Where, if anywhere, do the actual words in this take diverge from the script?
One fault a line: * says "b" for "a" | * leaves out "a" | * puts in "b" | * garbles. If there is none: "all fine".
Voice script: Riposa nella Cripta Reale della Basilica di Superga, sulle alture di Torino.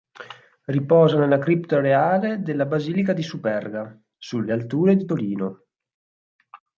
all fine